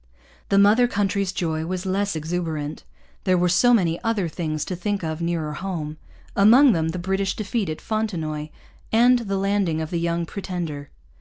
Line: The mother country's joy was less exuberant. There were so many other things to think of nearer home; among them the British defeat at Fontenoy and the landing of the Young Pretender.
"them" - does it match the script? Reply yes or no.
yes